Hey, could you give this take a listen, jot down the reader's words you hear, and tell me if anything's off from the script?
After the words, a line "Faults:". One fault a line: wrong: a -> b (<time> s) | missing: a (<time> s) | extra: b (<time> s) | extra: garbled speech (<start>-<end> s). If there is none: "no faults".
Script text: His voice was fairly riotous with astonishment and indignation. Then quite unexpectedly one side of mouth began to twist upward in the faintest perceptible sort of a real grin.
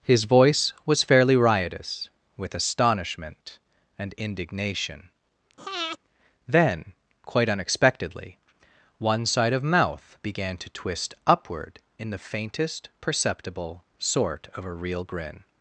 His voice was fairly riotous with astonishment and indignation. Then quite unexpectedly one side of mouth began to twist upward in the faintest perceptible sort of a real grin.
Faults:
no faults